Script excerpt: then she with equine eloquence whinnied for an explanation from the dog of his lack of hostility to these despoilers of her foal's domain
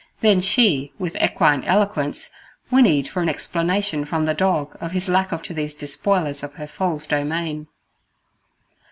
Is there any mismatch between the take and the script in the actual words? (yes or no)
yes